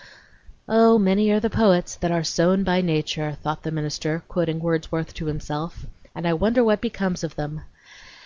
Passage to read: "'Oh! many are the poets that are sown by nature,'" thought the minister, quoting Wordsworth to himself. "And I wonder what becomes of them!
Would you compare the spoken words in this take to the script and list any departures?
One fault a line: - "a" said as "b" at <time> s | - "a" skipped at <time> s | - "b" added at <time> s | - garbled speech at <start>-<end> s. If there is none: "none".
none